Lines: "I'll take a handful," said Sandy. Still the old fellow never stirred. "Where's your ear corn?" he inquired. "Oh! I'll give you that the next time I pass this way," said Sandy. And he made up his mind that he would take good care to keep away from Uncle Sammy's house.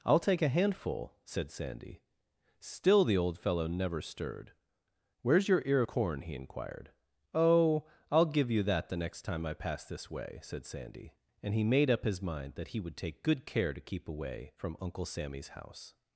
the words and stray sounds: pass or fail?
pass